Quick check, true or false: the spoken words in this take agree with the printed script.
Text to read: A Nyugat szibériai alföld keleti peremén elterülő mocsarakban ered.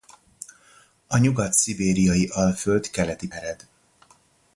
false